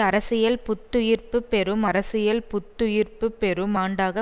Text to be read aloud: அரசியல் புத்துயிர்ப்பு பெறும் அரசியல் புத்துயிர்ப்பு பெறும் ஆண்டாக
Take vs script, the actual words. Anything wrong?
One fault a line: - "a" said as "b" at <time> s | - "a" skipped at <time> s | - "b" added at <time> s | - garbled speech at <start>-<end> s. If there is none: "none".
none